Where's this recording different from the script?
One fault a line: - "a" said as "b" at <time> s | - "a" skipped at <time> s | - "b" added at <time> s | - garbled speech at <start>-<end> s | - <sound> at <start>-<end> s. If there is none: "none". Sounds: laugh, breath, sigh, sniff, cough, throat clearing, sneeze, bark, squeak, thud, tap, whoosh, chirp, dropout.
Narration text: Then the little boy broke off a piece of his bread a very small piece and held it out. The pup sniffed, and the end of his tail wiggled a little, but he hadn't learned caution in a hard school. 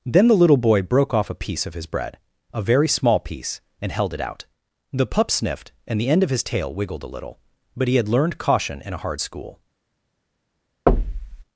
- "hadn't" said as "had" at 8.0 s
- thud at 10.9-11.4 s